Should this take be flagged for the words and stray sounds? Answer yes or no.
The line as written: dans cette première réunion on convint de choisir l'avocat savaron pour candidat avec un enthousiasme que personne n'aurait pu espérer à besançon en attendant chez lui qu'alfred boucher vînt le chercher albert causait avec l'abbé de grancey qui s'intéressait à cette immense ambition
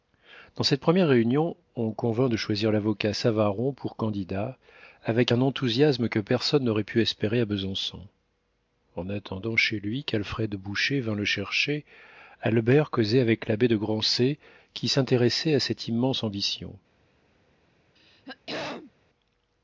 yes